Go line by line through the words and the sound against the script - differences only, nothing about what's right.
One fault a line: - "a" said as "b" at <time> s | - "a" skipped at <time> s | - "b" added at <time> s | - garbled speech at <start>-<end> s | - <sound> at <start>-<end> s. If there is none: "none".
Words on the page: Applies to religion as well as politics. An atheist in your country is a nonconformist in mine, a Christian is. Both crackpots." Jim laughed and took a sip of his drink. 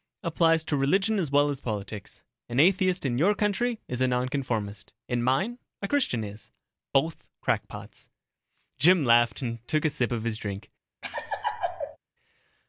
- laugh at 11.0-12.0 s